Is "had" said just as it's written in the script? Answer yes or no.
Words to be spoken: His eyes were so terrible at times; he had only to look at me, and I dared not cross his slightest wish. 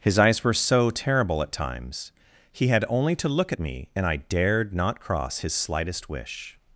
yes